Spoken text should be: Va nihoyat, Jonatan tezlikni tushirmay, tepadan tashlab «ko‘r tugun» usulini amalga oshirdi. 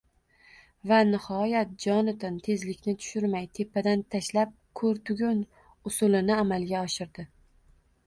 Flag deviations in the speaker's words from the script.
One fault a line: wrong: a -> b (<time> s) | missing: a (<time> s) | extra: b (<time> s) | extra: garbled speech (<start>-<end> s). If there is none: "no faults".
no faults